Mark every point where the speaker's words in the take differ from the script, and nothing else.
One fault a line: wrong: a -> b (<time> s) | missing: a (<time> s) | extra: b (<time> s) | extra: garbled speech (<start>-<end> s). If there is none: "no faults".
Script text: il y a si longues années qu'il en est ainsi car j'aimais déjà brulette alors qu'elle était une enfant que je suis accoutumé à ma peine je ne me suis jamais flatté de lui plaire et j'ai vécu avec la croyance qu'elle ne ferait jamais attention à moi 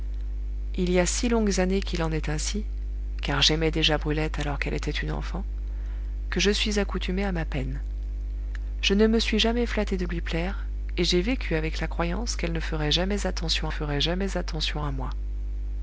extra: ferait jamais attention (13.7 s)